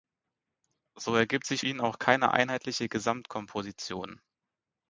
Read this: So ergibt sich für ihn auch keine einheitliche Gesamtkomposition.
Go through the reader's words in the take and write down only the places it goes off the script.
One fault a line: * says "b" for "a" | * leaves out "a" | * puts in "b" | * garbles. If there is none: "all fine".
* leaves out "für"